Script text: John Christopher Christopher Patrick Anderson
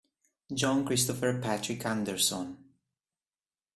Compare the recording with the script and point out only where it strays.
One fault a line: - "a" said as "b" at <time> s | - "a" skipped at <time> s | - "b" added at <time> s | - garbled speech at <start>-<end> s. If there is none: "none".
- "Christopher" skipped at 1.4 s